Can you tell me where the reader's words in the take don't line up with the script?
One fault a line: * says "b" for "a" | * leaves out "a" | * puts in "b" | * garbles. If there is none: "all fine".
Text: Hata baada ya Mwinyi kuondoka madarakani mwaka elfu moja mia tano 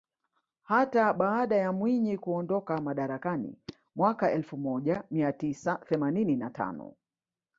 * puts in "tisa themanini na"